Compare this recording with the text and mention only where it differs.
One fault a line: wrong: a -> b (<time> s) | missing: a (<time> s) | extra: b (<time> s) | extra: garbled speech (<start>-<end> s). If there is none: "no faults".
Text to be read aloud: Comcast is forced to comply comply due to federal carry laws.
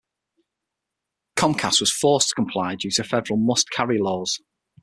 wrong: is -> was (1.8 s)
missing: comply (2.8 s)
extra: must (3.4 s)